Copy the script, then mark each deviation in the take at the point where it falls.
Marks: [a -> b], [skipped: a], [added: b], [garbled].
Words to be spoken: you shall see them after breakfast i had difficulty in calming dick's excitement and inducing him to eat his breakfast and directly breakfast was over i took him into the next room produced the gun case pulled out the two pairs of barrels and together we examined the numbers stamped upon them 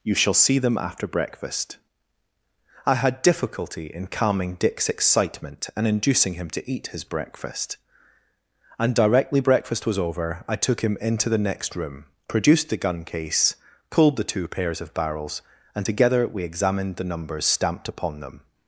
you shall see them after breakfast i had difficulty in calming dick's excitement and inducing him to eat his breakfast and directly breakfast was over i took him into the next room produced the gun case pulled [skipped: out] the two pairs of barrels and together we examined the numbers stamped upon them